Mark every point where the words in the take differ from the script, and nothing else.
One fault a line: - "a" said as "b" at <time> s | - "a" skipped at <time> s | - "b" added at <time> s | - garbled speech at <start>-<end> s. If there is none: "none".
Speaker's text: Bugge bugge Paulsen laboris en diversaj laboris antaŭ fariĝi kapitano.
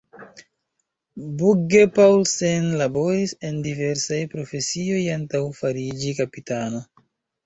- "bugge" skipped at 1.8 s
- "laboris" said as "profesioj" at 4.4 s